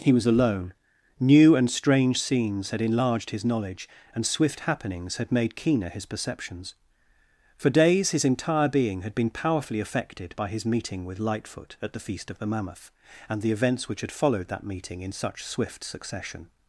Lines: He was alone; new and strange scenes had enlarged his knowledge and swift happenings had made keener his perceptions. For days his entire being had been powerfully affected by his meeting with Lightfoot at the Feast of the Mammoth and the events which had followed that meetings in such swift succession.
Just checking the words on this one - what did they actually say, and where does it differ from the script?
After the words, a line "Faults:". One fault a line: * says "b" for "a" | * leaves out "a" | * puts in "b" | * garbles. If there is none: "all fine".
He was alone; new and strange scenes had enlarged his knowledge and swift happenings had made keener his perceptions. For days his entire being had been powerfully affected by his meeting with Lightfoot at the Feast of the Mammoth and the events which had followed that meeting in such swift succession.
Faults:
* says "meeting" for "meetings"